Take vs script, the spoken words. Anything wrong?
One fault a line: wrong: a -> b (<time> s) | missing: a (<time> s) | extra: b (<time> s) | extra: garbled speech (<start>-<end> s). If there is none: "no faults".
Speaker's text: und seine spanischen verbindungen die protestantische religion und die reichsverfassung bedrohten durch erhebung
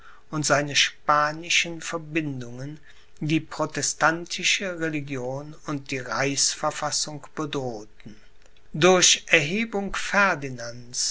no faults